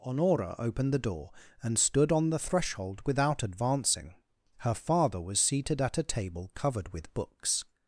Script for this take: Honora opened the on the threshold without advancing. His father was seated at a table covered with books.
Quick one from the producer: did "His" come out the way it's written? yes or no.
no